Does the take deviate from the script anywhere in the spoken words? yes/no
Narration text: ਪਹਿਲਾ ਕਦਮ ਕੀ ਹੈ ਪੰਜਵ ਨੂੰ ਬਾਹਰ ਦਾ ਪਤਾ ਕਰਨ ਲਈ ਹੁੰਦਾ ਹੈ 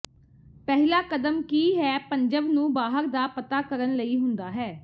no